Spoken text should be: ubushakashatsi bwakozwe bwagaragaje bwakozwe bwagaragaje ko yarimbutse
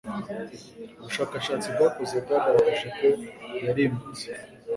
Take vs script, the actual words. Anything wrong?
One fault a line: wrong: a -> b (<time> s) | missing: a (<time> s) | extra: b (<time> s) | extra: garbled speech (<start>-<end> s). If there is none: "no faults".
missing: bwakozwe bwagaragaje (2.9 s)